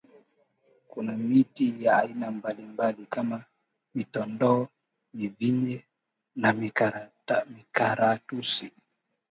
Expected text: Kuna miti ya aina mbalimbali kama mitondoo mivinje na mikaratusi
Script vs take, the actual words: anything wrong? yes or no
no